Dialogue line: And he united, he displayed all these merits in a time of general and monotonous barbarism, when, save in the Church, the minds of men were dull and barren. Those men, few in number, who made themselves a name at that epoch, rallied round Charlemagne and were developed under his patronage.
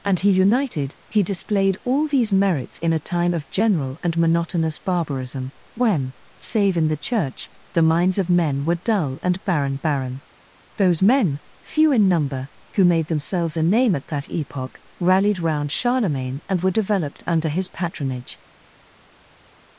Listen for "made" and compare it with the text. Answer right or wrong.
right